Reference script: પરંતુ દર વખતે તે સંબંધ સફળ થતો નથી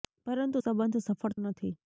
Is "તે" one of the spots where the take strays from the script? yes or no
yes